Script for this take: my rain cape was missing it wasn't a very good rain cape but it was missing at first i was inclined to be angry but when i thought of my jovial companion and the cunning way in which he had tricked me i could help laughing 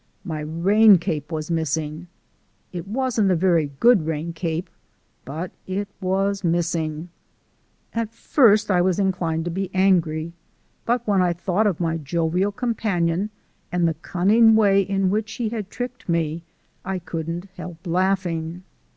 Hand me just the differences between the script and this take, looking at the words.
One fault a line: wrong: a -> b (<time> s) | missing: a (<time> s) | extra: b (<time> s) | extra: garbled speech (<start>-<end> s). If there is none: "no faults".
wrong: could -> couldn't (17.0 s)